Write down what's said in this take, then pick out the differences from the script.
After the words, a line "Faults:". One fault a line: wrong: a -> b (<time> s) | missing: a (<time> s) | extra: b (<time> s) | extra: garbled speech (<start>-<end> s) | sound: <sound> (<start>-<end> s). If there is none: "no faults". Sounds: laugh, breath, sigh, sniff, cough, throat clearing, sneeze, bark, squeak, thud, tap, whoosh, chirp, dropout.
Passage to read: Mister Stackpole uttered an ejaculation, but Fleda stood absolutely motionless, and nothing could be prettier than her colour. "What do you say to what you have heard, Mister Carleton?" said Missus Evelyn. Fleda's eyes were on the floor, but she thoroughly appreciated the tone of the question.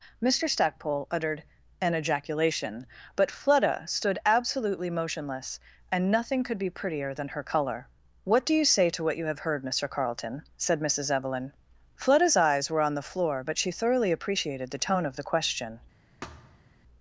Mister Stackpole uttered an ejaculation, but Fleda stood absolutely motionless, and nothing could be prettier than her colour. "What do you say to what you have heard, Mister Carleton?" said Missus Evelyn. Fleda's eyes were on the floor, but she thoroughly appreciated the tone of the question.
Faults:
sound: thud (16.2-16.7 s)